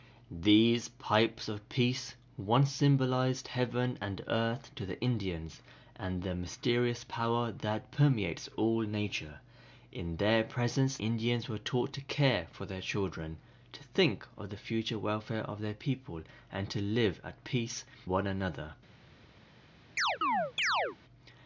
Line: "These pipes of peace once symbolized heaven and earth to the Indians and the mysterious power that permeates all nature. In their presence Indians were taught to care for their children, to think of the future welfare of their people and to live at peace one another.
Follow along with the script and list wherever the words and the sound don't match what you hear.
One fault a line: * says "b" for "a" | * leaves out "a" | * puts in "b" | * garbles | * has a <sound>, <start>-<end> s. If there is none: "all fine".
* has a chirp, 20.0-21.0 s